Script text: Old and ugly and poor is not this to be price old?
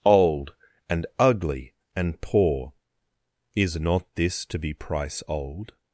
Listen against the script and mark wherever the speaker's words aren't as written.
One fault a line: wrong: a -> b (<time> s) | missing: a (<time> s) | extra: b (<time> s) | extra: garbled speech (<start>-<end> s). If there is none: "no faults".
no faults